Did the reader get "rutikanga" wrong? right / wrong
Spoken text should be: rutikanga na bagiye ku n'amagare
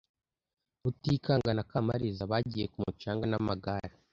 right